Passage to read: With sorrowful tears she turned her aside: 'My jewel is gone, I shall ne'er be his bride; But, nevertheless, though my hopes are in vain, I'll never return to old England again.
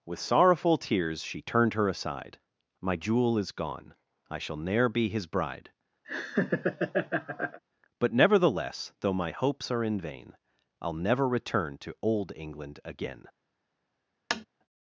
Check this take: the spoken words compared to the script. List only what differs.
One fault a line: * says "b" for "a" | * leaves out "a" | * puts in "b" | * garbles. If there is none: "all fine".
all fine